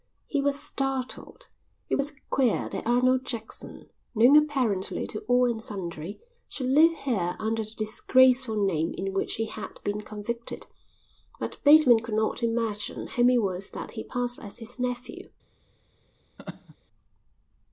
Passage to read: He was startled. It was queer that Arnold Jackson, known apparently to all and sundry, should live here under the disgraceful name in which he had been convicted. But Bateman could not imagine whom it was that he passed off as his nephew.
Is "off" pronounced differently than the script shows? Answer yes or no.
yes